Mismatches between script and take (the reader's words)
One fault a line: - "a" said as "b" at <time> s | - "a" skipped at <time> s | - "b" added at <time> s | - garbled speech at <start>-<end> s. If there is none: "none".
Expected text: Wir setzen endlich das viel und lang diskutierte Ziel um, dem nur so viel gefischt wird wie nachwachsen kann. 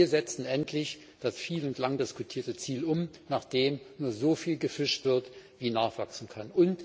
- "nach" added at 3.3 s